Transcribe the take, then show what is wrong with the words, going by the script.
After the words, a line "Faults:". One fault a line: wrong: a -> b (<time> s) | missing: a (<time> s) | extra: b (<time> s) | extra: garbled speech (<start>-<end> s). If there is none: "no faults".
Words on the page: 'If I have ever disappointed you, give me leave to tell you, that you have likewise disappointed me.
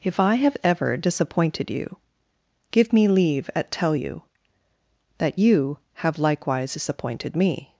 'If I have ever disappointed you, give me leave at tell you, that you have likewise disappointed me.
Faults:
wrong: to -> at (3.5 s)